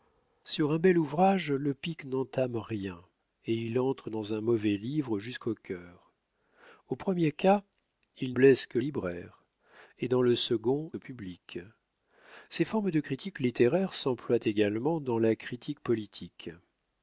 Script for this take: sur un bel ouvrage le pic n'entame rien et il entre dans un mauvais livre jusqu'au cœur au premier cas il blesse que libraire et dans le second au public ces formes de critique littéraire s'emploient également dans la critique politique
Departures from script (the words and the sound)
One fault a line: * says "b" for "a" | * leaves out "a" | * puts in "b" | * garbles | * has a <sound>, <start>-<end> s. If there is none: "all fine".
all fine